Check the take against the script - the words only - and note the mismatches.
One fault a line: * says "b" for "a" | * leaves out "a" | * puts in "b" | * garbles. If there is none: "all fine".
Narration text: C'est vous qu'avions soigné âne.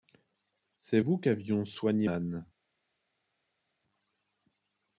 all fine